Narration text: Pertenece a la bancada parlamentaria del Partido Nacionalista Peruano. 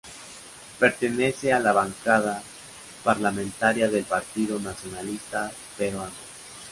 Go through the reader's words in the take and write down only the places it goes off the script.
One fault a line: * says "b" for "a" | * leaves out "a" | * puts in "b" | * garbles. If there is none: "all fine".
all fine